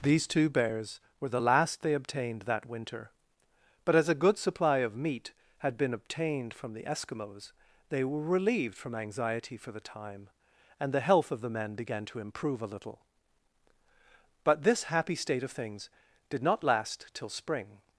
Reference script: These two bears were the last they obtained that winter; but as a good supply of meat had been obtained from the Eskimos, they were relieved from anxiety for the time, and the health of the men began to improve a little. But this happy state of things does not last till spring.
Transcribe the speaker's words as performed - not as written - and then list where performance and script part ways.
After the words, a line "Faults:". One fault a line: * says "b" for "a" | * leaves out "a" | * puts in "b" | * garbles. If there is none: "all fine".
These two bears were the last they obtained that winter; but as a good supply of meat had been obtained from the Eskimos, they were relieved from anxiety for the time, and the health of the men began to improve a little. But this happy state of things did not last till spring.
Faults:
* says "did" for "does"